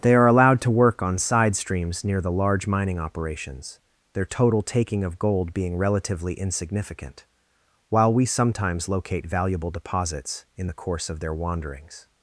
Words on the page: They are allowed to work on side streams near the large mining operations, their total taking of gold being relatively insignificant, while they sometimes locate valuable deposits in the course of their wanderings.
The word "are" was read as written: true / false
true